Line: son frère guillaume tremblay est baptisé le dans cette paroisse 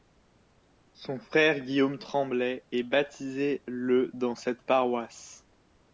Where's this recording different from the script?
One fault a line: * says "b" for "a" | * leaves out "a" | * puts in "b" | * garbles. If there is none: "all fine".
all fine